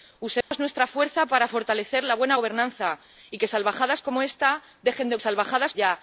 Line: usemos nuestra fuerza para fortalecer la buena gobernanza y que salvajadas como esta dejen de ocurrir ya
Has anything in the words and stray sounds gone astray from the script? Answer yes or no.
yes